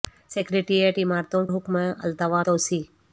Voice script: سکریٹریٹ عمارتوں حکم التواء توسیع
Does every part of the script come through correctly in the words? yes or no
yes